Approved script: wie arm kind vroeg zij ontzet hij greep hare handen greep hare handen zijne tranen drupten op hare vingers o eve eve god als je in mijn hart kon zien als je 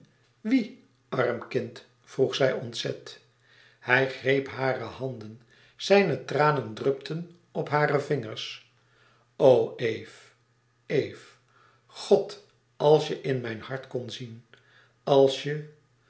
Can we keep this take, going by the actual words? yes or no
no